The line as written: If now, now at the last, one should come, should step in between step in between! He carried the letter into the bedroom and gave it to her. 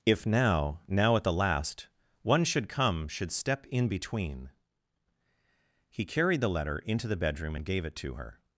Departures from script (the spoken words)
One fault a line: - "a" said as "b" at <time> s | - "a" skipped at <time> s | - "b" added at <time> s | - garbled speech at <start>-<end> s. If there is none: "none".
- "step in between" skipped at 4.5 s